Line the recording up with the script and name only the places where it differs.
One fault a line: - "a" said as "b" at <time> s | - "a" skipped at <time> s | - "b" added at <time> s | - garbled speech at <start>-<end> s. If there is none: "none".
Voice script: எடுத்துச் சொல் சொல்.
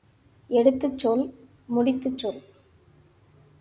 - "முடித்துச்" added at 1.8 s